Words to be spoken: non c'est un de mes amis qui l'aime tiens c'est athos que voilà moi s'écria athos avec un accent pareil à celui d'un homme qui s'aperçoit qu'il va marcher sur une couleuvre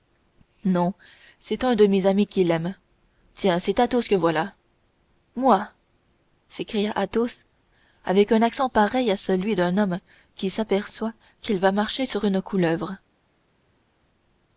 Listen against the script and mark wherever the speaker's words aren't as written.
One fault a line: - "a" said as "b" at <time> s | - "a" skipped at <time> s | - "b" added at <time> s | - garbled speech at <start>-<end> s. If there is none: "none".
none